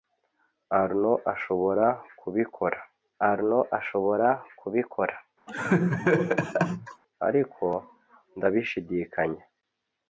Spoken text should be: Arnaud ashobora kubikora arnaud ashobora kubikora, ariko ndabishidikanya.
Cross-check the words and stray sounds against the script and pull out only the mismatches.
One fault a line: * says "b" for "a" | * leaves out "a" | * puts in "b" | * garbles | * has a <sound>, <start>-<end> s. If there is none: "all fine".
* has a laugh, 5.5-7.0 s